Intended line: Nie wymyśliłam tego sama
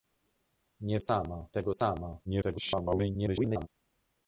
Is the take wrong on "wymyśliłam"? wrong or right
wrong